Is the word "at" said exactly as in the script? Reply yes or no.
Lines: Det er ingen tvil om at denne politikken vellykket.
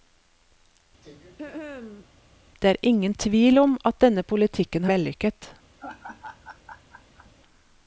yes